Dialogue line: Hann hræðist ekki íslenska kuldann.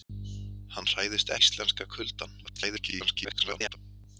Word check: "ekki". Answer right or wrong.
wrong